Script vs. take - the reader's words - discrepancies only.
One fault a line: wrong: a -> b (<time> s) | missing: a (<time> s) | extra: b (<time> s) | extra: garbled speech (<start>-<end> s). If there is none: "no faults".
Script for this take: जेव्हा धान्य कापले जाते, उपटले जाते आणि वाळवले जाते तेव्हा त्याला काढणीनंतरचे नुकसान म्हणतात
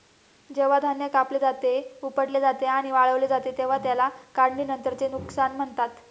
no faults